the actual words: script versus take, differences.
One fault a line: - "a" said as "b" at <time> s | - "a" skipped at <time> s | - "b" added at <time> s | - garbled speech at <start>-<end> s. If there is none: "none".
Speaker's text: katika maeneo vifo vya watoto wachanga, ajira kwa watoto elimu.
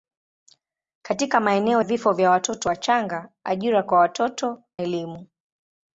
none